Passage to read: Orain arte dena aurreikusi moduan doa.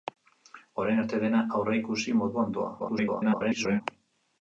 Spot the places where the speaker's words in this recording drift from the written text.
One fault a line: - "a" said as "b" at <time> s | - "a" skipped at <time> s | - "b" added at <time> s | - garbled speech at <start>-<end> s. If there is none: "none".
- garbled speech at 2.8-3.8 s